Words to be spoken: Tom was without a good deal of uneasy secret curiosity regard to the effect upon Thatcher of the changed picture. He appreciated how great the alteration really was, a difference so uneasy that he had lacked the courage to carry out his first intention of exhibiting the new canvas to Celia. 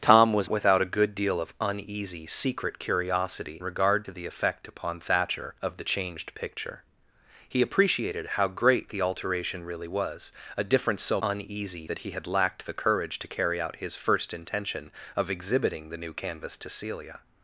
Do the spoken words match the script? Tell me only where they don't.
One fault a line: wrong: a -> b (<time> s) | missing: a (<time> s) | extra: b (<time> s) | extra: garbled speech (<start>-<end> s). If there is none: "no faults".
no faults